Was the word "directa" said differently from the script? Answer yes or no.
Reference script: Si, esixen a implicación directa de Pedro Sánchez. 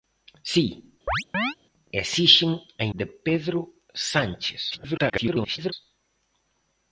yes